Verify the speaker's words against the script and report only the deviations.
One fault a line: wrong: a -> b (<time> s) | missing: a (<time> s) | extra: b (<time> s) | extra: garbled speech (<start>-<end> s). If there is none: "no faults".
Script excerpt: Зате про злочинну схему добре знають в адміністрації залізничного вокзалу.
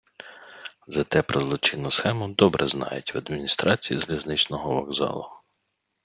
no faults